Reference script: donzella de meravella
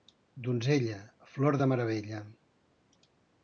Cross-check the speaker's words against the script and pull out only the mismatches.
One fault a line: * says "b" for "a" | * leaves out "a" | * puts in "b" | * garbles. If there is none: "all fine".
* puts in "flor"